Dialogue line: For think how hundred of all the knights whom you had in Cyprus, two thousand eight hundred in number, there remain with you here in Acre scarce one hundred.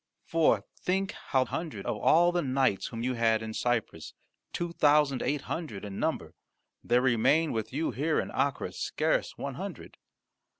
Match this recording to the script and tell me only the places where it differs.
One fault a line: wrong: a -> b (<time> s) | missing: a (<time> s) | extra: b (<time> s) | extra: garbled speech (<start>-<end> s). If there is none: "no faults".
no faults